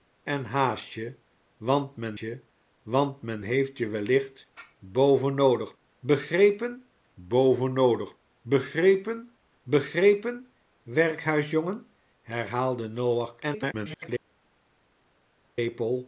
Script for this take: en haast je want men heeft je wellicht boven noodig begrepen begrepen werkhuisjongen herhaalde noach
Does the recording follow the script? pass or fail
fail